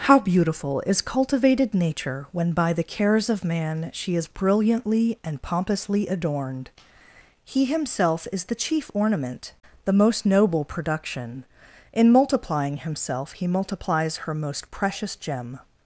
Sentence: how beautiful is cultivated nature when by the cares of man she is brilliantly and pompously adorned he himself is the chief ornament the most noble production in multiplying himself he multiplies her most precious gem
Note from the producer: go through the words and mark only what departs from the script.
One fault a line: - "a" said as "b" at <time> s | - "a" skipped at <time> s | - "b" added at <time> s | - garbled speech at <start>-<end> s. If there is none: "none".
none